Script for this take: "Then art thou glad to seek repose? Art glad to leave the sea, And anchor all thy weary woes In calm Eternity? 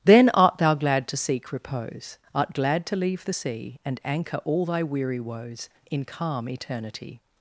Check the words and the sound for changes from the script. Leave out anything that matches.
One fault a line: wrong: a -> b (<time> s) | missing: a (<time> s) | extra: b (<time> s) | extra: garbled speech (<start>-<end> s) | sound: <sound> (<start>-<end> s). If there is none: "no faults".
no faults